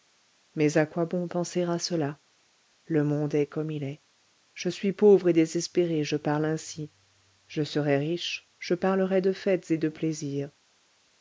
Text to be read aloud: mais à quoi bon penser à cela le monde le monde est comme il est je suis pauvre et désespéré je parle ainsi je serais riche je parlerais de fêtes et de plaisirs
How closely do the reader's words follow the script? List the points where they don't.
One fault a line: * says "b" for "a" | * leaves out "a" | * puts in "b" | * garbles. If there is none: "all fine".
* leaves out "le monde"